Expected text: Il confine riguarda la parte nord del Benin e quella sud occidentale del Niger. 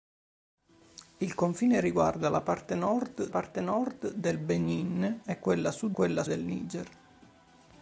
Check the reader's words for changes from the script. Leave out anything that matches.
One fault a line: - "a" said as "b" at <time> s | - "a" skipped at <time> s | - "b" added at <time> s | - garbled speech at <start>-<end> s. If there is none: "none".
- "parte nord" added at 3.3 s
- "occidentale" said as "quella" at 5.9 s